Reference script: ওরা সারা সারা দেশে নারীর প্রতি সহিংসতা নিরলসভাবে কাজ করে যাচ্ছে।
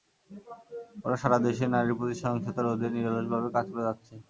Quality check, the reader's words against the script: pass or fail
fail